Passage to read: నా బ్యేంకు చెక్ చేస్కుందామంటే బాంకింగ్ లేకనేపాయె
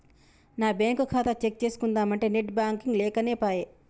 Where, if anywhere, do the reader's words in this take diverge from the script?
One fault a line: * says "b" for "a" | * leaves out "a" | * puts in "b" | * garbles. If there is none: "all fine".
* puts in "ఖాతా"
* puts in "నెట్"